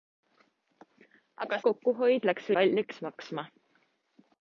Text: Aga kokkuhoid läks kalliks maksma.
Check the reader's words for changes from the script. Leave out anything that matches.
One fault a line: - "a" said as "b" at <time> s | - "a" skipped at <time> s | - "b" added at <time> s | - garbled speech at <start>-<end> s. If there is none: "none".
none